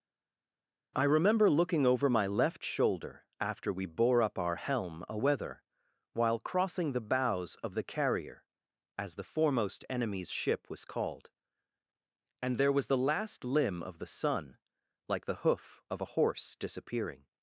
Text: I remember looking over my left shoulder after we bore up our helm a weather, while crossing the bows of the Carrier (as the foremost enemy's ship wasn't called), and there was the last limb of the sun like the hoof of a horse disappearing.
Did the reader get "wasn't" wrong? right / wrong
wrong